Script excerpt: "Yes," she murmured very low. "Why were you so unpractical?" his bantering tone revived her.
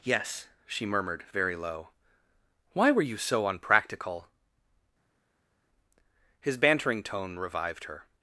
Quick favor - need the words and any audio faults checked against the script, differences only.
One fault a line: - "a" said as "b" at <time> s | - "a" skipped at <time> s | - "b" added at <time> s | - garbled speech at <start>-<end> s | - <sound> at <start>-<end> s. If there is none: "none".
none